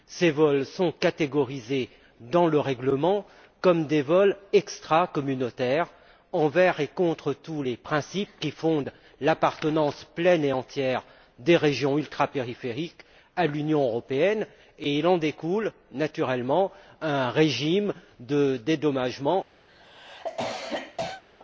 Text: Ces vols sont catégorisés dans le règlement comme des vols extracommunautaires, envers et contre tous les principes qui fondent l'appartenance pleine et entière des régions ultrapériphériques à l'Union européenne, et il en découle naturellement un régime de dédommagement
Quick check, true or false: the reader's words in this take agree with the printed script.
true